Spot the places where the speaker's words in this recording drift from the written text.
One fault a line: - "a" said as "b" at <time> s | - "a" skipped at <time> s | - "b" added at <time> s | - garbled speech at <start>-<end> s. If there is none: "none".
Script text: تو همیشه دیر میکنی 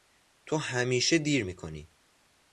none